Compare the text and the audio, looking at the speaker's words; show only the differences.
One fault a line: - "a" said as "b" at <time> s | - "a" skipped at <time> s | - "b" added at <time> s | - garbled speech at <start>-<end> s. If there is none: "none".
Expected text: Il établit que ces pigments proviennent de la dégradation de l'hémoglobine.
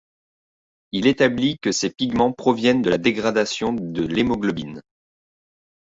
none